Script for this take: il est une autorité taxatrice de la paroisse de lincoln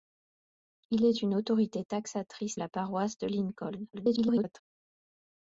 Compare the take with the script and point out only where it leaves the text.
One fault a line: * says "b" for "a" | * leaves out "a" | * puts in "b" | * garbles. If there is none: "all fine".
* leaves out "de"
* garbles